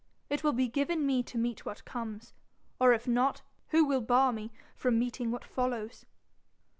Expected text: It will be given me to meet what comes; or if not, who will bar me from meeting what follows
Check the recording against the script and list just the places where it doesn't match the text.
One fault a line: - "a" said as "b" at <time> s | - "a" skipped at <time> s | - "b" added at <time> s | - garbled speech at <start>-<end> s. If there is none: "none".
none